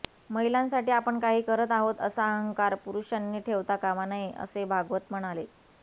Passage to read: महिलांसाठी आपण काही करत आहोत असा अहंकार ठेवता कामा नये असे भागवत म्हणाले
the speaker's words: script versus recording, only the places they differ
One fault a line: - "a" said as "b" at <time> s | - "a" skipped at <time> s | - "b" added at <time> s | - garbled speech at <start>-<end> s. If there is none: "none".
- "पुरुषांनी" added at 2.8 s